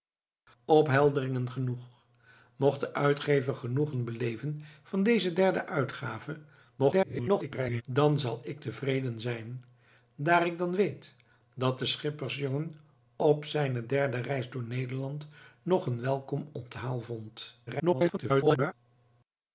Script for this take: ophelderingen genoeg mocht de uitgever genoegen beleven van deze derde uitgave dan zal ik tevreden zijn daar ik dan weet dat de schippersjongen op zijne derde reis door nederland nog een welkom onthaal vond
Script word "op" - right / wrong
right